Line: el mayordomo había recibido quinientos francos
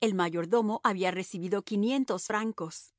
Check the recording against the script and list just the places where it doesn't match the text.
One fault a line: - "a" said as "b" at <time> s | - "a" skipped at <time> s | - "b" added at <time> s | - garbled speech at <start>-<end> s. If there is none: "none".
none